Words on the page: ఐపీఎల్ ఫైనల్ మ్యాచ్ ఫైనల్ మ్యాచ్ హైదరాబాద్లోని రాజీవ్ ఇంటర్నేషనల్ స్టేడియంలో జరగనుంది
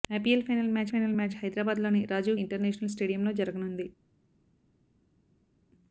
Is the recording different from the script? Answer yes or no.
no